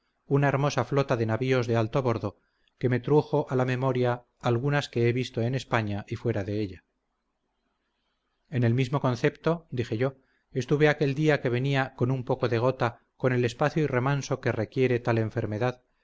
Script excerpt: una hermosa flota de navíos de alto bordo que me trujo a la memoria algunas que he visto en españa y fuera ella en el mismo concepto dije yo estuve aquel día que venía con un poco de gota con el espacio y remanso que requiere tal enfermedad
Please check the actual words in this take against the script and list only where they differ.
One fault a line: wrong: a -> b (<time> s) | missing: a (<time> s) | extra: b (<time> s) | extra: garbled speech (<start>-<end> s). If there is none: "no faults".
extra: de (6.4 s)